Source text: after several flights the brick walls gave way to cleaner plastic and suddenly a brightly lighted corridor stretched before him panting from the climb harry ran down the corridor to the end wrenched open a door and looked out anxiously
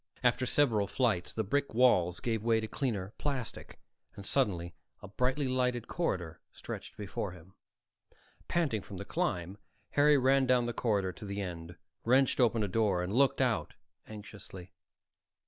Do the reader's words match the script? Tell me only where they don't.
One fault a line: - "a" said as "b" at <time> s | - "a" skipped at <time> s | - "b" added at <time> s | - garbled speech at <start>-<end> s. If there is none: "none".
none